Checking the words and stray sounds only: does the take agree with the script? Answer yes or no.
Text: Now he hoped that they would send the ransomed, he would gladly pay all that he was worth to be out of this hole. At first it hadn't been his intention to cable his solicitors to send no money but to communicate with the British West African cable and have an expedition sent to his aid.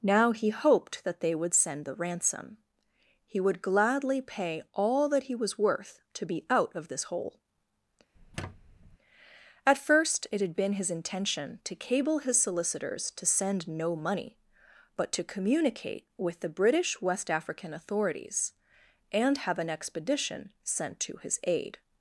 no